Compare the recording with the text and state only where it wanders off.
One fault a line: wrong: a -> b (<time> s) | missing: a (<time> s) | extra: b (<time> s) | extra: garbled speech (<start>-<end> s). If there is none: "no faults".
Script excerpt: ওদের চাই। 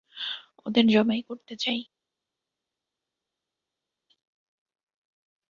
extra: জবাই করতে (0.9 s)